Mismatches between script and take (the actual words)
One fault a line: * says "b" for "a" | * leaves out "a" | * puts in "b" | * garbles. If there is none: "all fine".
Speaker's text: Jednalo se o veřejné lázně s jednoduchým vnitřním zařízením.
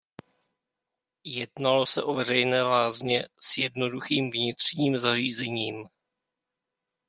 all fine